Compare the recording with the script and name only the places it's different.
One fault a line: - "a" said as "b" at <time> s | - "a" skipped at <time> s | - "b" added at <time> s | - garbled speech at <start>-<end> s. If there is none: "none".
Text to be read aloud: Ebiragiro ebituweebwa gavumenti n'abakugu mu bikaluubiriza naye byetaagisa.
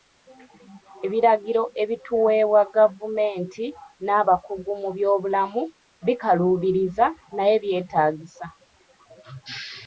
- "byobulamu" added at 5.0 s